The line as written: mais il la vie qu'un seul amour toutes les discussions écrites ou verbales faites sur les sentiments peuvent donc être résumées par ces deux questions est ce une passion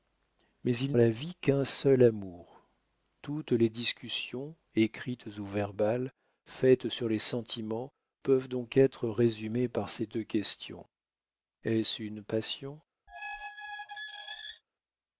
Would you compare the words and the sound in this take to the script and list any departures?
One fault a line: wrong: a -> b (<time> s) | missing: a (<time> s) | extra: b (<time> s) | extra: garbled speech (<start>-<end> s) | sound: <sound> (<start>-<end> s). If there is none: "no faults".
sound: squeak (13.1-14.6 s)